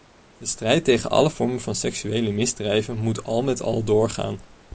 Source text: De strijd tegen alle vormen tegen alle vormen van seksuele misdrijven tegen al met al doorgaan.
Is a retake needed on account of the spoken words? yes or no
yes